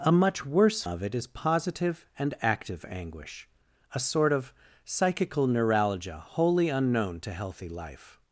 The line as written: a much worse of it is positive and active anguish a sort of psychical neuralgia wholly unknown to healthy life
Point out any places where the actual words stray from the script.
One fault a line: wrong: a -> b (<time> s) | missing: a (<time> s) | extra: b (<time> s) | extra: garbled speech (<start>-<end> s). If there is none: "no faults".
no faults